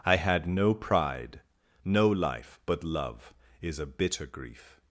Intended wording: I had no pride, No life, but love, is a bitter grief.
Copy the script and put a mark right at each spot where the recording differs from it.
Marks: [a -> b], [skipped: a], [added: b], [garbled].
I had no pride, No life, but love, is a bitter grief.